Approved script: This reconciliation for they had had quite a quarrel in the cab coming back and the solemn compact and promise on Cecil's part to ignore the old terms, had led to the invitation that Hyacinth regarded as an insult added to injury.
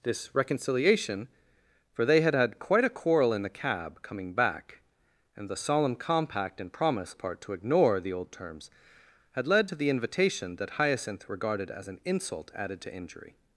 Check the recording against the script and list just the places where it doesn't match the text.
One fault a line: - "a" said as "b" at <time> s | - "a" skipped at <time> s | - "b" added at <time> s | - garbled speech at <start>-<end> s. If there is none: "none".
- "on Cecil's" skipped at 7.2 s